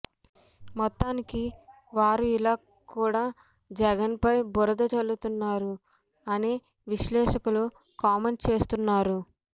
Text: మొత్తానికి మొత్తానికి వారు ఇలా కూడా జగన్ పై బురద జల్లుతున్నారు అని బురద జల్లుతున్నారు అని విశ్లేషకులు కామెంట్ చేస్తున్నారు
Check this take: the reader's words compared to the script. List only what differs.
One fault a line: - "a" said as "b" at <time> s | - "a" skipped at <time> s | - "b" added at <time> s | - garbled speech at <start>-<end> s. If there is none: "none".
- "మొత్తానికి" skipped at 1.4 s
- "బురద జల్లుతున్నారు అని" skipped at 6.5 s